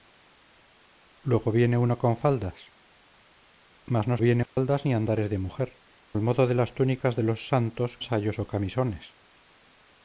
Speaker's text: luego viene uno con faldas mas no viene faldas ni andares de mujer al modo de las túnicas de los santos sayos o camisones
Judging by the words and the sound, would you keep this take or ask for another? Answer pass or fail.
fail